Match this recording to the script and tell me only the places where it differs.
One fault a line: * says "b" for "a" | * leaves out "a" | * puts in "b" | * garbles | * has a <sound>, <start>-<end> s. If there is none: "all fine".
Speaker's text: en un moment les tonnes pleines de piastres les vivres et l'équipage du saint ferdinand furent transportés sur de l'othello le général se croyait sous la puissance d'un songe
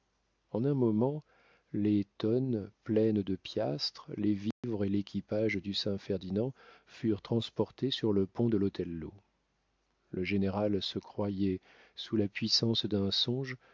* has a dropout, 4.5-4.6 s
* puts in "le pont"